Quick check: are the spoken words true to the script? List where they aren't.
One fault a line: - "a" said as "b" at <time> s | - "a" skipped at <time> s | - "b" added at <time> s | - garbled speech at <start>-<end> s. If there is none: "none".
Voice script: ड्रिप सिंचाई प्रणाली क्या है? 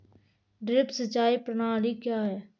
none